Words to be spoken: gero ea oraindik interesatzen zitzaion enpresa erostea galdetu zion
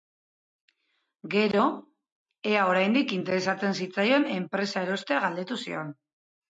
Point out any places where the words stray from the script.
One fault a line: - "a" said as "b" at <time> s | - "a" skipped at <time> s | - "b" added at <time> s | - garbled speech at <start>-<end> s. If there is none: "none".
none